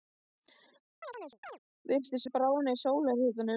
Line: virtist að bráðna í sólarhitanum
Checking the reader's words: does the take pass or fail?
pass